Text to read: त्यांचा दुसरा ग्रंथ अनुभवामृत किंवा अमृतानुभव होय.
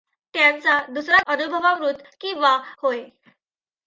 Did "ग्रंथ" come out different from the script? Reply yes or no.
yes